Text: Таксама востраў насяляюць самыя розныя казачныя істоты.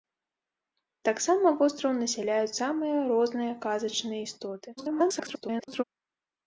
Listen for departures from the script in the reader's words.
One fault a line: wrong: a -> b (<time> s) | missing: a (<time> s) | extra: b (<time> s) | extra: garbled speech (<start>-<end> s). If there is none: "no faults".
extra: garbled speech (4.8-5.8 s)